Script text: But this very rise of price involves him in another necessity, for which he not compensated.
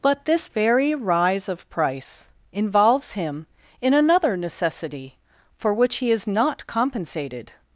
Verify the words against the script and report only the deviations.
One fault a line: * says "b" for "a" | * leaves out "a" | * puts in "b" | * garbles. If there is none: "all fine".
* puts in "is"